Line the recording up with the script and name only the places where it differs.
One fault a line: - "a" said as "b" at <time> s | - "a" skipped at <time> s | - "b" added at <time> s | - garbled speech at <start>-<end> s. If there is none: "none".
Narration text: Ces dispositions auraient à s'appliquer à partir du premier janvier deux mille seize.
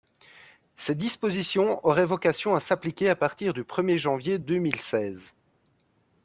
- "vocation" added at 2.1 s